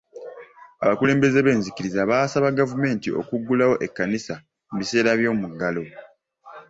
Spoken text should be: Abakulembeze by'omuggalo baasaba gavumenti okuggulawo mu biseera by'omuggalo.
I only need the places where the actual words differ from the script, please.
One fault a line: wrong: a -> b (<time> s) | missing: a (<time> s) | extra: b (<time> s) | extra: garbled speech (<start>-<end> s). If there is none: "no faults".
wrong: by'omuggalo -> b'enzikiriza (1.4 s)
extra: ekkanisa (3.9 s)